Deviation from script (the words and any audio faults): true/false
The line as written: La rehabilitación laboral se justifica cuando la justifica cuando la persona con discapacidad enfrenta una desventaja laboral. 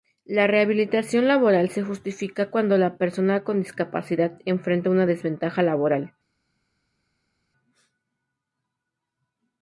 true